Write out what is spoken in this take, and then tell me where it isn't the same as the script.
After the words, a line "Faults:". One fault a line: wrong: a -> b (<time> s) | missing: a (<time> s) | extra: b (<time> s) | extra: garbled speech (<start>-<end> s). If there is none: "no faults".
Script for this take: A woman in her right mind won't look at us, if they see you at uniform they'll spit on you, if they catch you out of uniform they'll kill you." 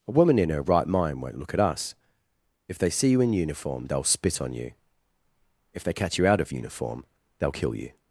A woman in her right mind won't look at us, if they see you in uniform they'll spit on you, if they catch you out of uniform they'll kill you."
Faults:
wrong: at -> in (3.2 s)